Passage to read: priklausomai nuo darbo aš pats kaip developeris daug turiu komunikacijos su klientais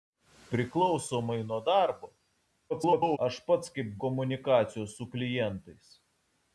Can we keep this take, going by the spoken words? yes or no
no